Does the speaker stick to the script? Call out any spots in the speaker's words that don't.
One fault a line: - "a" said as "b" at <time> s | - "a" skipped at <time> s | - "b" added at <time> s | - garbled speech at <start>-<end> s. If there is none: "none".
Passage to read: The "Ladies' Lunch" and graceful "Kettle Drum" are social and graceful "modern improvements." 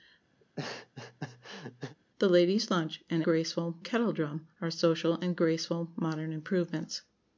none